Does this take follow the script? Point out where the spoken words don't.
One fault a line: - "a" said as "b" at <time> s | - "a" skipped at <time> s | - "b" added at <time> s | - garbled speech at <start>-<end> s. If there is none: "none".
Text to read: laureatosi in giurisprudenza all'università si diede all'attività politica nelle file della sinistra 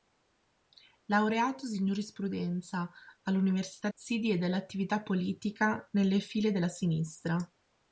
none